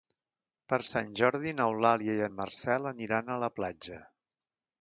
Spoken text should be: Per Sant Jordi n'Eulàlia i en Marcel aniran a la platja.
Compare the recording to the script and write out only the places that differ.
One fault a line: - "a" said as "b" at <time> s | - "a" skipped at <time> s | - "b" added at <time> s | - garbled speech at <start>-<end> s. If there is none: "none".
none